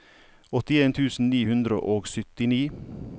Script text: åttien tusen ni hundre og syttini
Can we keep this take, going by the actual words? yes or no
yes